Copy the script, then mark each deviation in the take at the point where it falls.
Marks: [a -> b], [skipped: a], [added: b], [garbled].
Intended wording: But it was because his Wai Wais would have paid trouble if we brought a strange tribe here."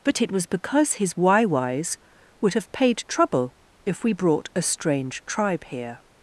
But it was because his Wai Wais would have paid trouble if we brought a strange tribe here."